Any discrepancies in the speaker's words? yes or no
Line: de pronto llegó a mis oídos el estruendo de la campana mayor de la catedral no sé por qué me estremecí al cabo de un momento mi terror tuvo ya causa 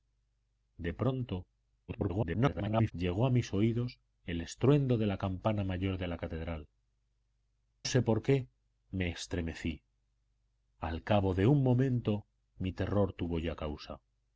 yes